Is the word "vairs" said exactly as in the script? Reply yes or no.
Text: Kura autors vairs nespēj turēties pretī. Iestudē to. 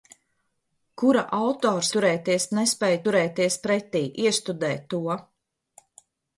no